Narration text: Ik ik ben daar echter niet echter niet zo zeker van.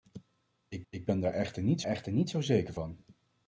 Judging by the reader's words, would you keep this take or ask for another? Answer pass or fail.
pass